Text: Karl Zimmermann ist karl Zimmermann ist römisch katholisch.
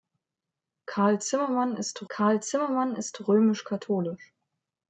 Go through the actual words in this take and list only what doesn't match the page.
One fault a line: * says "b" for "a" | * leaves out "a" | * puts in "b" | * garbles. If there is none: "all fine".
all fine